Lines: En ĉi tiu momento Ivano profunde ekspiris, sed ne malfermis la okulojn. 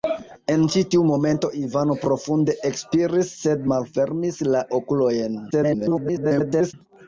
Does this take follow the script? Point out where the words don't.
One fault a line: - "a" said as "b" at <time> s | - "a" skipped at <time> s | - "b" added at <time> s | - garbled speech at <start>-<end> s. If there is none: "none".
- "ne" skipped at 3.7 s
- garbled speech at 5.5-6.7 s